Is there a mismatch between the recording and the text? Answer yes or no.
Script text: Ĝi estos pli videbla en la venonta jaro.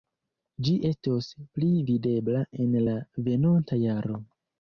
no